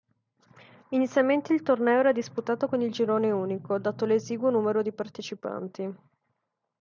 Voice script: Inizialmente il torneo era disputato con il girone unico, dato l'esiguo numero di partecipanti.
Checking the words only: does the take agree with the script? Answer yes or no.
yes